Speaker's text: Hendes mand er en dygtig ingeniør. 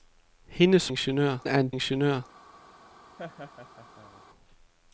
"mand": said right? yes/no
no